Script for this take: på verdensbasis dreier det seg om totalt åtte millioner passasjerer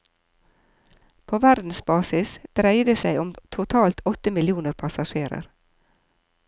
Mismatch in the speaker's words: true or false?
false